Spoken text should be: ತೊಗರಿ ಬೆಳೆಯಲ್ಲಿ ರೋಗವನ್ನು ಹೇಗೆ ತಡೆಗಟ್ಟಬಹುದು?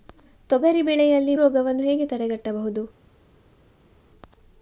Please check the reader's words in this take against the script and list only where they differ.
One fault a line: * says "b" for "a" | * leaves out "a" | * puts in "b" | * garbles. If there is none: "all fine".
all fine